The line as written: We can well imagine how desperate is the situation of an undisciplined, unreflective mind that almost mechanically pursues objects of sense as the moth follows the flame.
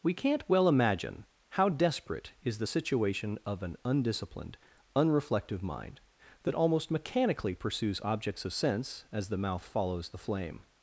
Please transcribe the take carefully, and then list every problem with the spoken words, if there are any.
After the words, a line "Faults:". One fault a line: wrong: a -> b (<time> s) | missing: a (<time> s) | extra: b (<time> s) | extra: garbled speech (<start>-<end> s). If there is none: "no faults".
We can't well imagine how desperate is the situation of an undisciplined, unreflective mind that almost mechanically pursues objects of sense as the mouth follows the flame.
Faults:
wrong: can -> can't (0.1 s)
wrong: moth -> mouth (9.4 s)